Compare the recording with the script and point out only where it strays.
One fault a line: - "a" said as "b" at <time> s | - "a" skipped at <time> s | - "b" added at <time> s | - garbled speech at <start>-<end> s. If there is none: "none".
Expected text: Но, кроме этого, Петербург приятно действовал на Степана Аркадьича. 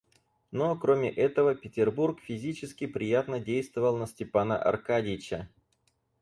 - "физически" added at 2.2 s